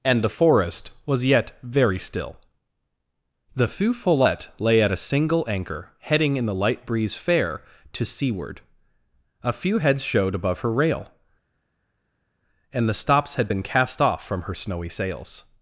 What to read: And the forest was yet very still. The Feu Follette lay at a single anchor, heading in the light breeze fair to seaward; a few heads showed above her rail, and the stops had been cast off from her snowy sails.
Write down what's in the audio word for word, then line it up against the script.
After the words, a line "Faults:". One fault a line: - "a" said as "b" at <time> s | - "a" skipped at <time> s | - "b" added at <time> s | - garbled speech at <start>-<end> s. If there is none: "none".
And the forest was yet very still. The Feu Follette lay at a single anchor, heading in the light breeze fair to seaward; a few heads showed above her rail, and the stops had been cast off from her snowy sails.
Faults:
none